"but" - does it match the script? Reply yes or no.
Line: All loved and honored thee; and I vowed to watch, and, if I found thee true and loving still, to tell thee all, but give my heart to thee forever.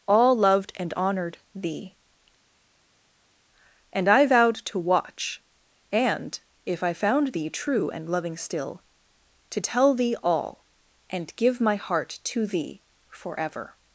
no